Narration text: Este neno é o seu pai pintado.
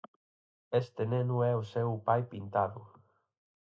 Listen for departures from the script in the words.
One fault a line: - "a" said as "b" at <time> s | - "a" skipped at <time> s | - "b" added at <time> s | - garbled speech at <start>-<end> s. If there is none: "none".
none